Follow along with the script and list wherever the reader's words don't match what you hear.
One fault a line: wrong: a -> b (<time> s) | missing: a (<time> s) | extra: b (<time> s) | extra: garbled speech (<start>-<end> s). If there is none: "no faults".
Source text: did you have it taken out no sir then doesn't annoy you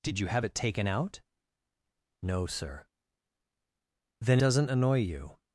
no faults